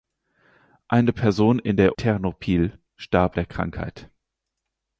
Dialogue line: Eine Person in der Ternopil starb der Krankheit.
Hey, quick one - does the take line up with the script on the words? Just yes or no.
yes